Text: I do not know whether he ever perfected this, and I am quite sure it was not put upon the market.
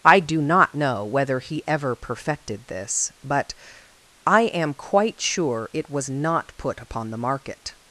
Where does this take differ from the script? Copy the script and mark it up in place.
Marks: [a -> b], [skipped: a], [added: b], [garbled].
I do not know whether he ever perfected this, [and -> but] I am quite sure it was not put upon the market.